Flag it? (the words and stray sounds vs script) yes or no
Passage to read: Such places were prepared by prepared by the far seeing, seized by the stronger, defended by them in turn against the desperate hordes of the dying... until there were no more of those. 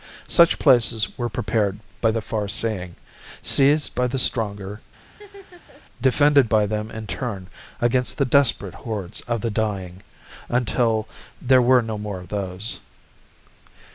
yes